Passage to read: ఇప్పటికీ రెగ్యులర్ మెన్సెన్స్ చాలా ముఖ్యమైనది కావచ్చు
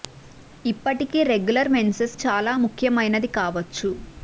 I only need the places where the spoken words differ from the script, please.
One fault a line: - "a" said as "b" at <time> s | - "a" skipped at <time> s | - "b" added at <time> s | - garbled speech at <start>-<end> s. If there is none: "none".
none